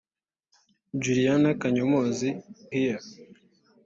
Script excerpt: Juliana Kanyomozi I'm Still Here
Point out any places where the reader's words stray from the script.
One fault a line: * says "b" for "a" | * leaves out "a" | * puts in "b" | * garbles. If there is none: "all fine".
* leaves out "I'm Still"